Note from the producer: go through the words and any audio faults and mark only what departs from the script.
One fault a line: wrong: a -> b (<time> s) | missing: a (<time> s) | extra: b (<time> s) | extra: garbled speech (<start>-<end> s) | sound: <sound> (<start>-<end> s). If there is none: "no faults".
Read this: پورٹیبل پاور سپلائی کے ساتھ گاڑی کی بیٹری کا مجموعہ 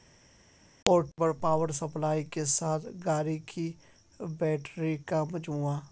no faults